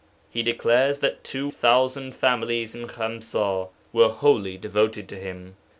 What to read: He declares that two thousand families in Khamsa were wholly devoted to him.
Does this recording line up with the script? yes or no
yes